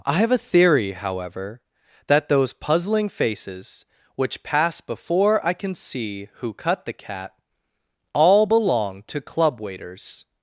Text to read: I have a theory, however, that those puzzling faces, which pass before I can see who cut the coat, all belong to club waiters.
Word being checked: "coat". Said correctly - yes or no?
no